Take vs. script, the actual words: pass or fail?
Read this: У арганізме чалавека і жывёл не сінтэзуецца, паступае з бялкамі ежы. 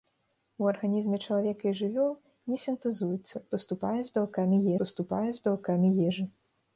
fail